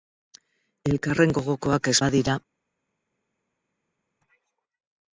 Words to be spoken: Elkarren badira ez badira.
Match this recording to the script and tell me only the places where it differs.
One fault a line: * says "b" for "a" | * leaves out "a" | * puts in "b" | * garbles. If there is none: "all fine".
* says "gogokoak" for "badira"